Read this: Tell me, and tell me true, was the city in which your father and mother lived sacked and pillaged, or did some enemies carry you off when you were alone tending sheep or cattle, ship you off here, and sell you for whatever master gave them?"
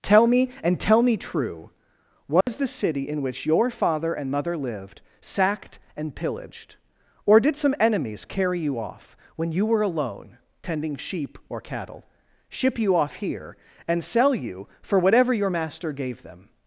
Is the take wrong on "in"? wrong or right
right